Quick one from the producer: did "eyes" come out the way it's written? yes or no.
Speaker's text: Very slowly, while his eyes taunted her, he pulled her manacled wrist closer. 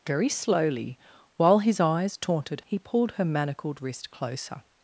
yes